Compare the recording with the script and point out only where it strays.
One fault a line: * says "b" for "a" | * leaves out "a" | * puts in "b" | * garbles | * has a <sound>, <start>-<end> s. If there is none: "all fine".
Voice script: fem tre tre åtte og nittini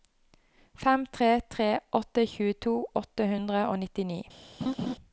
* puts in "tjueto åtte hundre"
* has a laugh, 4.6-5.0 s